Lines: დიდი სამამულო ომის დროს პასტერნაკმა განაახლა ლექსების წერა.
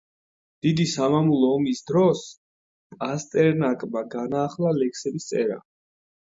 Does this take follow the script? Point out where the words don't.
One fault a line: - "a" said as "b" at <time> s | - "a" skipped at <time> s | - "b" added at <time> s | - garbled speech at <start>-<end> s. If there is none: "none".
none